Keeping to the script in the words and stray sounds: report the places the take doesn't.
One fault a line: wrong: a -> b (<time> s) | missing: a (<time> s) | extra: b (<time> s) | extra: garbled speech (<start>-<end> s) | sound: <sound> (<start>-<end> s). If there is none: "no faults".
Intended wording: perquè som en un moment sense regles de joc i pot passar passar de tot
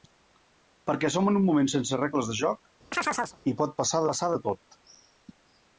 sound: chirp (2.9-3.4 s)